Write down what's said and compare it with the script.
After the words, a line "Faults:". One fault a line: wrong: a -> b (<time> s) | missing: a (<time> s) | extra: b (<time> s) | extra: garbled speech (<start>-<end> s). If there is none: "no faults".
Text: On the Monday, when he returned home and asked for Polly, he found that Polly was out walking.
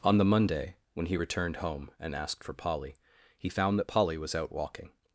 On the Monday, when he returned home and asked for Polly, he found that Polly was out walking.
Faults:
no faults